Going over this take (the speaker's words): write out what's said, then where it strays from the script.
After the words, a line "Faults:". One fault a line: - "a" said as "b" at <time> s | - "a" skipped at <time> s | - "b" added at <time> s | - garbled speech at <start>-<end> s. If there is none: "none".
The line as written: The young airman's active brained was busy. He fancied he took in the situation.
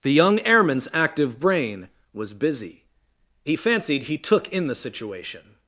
The young airman's active brain was busy. He fancied he took in the situation.
Faults:
- "brained" said as "brain" at 1.4 s